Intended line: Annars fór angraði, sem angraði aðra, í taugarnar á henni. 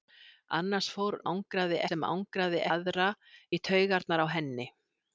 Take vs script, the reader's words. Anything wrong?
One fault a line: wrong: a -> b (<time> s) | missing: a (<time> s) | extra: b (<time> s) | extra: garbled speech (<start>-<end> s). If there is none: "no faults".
no faults